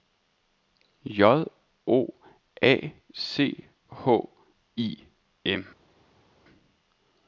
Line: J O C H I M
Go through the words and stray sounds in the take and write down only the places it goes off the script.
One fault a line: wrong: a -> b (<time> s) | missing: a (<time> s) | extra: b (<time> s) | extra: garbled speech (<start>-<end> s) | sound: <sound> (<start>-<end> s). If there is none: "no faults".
extra: A (2.6 s)